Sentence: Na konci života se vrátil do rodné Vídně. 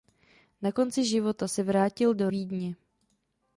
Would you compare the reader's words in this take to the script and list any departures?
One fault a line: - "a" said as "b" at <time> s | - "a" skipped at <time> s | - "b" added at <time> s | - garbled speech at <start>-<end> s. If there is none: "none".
- "rodné" skipped at 2.3 s